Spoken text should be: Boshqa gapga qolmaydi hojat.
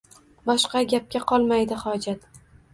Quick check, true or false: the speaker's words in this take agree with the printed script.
true